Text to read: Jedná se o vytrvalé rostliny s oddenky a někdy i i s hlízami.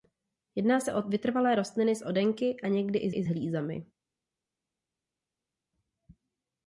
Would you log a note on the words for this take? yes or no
no